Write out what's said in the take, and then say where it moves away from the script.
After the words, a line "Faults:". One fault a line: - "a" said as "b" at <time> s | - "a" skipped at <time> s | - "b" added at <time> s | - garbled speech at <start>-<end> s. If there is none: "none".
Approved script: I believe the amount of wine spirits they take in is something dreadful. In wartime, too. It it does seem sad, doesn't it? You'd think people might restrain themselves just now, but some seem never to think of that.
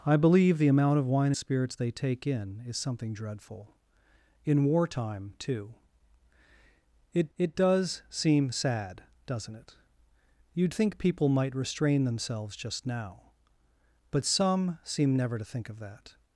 I believe the amount of wine spirits they take in is something dreadful. In wartime, too. It it does seem sad, doesn't it? You'd think people might restrain themselves just now, but some seem never to think of that.
Faults:
none